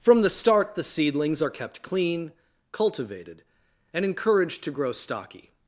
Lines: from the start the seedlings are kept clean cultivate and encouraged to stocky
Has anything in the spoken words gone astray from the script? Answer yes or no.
yes